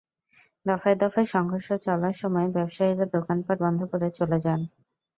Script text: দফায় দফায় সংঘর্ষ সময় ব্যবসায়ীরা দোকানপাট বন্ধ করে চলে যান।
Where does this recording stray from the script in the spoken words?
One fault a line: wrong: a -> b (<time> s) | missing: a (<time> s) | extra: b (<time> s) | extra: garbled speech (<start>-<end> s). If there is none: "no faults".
extra: চলার (1.9 s)